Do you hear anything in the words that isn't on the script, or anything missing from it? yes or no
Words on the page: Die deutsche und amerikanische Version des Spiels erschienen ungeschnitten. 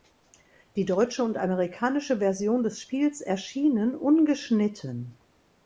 no